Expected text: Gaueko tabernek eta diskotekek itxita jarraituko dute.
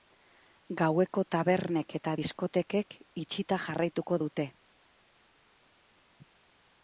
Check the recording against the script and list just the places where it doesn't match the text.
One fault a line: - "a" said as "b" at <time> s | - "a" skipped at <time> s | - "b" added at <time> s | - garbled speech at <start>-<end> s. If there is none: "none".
none